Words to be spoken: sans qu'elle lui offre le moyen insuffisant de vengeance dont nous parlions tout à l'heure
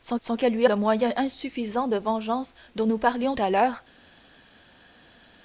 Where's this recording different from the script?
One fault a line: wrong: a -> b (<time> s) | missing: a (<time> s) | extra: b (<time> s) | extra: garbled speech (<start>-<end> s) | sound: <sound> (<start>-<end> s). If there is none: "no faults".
extra: sans (0.2 s)
missing: offre (0.7 s)
missing: tout (3.4 s)